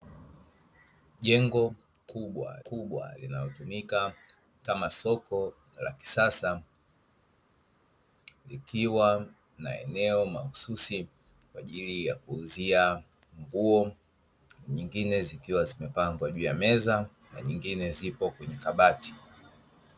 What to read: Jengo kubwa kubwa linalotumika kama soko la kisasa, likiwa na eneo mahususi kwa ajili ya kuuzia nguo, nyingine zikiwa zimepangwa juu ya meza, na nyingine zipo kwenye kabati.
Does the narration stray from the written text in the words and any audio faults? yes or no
no